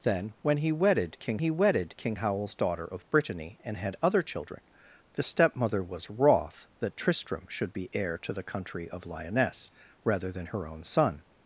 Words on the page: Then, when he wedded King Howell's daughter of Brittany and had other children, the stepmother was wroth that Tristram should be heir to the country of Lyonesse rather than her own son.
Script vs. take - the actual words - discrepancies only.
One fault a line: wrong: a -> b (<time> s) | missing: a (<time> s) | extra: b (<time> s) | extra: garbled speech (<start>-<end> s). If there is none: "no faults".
extra: he wedded King (1.4 s)